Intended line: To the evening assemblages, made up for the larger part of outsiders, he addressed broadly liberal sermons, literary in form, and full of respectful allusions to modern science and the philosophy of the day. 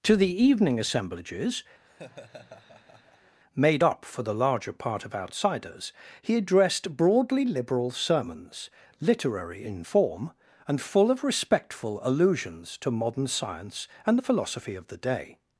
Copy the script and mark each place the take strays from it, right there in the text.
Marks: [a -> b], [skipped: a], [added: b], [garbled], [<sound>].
To the evening assemblages, [laugh] made up for the larger part of outsiders, he addressed broadly liberal sermons, literary in form, and full of respectful allusions to modern science and the philosophy of the day.